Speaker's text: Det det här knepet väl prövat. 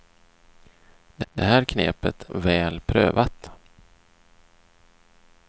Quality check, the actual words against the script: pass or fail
pass